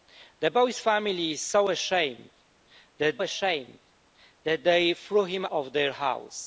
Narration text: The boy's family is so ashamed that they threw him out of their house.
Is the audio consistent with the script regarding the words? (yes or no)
no